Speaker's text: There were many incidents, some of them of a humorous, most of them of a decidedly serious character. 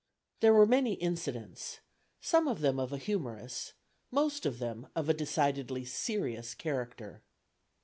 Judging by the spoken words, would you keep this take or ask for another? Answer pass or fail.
pass